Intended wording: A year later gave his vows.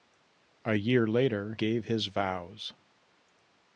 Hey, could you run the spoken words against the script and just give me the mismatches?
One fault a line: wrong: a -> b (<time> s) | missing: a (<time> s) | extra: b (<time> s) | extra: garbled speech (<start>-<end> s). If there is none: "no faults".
no faults